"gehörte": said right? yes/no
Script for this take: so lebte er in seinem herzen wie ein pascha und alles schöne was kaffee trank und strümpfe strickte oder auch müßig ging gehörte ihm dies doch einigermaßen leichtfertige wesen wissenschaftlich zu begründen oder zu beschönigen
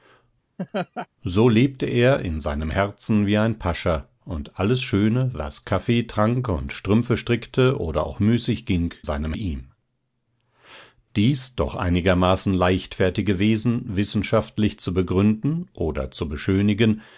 no